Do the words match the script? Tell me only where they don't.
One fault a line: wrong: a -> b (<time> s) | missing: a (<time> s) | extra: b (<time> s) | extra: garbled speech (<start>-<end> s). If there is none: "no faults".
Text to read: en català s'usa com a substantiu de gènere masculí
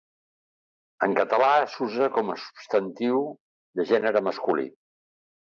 no faults